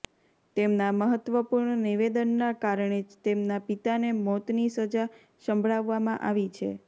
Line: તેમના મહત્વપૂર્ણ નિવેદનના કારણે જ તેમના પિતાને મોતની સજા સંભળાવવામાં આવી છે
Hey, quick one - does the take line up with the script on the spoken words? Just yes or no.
yes